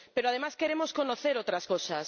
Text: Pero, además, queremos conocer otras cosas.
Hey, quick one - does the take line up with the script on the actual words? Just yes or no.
yes